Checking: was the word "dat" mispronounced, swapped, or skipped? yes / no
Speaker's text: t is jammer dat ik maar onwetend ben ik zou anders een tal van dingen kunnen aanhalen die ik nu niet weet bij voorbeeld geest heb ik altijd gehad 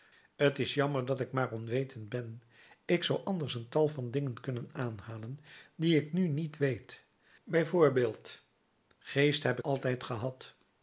no